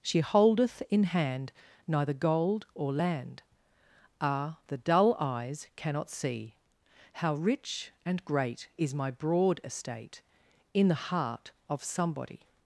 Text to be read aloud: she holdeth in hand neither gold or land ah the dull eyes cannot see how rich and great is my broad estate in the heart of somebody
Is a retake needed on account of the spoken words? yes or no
no